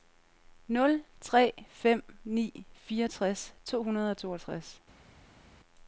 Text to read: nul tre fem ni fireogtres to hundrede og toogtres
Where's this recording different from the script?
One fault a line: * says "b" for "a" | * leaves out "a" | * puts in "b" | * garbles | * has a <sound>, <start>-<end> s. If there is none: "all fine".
all fine